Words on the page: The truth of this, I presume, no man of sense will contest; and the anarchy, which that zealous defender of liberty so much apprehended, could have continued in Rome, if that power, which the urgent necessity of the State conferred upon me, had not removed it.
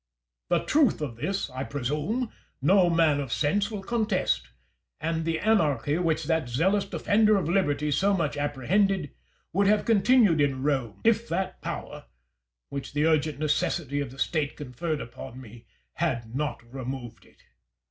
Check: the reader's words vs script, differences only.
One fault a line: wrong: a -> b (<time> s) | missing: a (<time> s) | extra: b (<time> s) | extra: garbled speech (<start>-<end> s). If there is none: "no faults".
wrong: could -> would (9.5 s)